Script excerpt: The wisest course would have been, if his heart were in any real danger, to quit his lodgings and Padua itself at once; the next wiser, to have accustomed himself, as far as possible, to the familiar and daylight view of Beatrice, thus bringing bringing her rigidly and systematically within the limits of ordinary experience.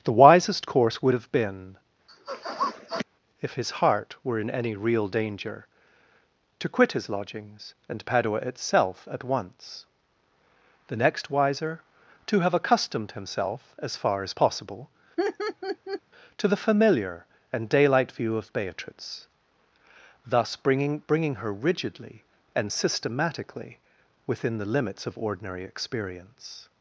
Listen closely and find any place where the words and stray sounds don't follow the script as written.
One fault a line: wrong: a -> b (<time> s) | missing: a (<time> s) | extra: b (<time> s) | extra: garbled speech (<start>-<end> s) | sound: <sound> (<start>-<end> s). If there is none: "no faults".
sound: sniff (2.1-3.1 s)
sound: laugh (15.2-16.0 s)